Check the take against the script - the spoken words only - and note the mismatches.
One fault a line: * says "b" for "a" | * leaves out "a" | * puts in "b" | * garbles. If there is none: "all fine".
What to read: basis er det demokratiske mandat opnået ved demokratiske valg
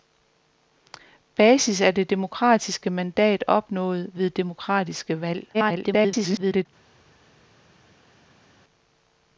* garbles